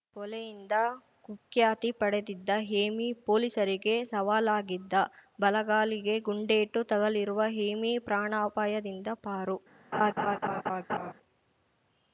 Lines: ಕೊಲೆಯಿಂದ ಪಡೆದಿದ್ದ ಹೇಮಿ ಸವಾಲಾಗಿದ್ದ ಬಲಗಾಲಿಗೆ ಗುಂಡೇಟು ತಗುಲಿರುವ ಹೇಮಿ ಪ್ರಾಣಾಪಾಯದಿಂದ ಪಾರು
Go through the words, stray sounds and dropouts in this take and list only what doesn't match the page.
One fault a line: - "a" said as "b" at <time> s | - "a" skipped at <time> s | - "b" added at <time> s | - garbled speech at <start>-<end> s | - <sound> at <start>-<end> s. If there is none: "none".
- "ಕುಖ್ಯಾತಿ" added at 1.2 s
- "ಪೊಲೀಸರಿಗೆ" added at 3.3 s
- laugh at 9.9-11.1 s